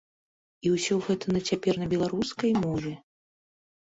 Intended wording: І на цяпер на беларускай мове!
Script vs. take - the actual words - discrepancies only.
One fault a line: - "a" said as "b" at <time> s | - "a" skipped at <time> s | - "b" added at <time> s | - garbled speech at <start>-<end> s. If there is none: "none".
- "ўсё гэта" added at 0.8 s